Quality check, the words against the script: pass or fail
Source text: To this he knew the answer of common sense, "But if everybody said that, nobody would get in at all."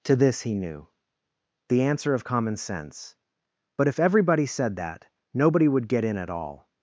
pass